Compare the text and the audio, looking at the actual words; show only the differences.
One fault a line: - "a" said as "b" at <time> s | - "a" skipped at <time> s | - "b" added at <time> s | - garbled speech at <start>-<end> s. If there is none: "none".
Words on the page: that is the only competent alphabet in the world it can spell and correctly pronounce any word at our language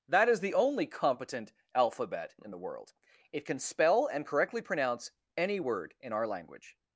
- "at" said as "in" at 6.0 s